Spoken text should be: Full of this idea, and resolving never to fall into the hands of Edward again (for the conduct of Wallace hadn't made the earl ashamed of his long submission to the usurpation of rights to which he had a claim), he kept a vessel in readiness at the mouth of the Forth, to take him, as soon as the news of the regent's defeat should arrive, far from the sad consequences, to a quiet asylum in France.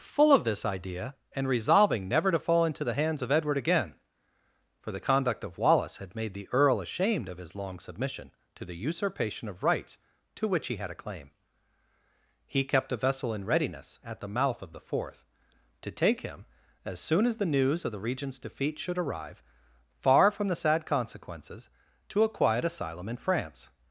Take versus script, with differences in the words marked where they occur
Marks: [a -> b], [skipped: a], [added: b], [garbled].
Full of this idea, and resolving never to fall into the hands of Edward again (for the conduct of Wallace [hadn't -> had] made the earl ashamed of his long submission to the usurpation of rights to which he had a claim), he kept a vessel in readiness at the mouth of the Forth, to take him, as soon as the news of the regent's defeat should arrive, far from the sad consequences, to a quiet asylum in France.